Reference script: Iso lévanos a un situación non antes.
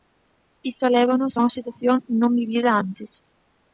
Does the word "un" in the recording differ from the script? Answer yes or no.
yes